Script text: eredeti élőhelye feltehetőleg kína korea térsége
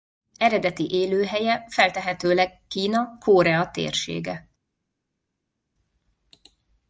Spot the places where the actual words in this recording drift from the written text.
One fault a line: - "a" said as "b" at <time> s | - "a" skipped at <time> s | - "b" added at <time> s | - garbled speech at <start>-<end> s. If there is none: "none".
none